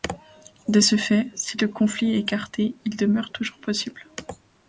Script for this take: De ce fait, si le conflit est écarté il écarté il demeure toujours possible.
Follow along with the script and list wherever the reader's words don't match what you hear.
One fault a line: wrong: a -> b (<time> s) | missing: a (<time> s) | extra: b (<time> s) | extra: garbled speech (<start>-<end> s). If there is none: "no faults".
missing: écarté il (3.0 s)